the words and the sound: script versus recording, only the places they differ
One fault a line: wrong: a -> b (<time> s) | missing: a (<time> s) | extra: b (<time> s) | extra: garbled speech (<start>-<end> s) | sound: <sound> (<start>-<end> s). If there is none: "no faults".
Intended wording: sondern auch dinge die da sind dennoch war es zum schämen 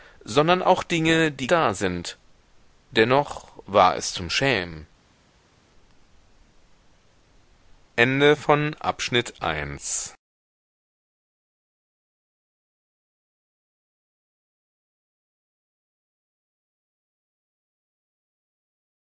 no faults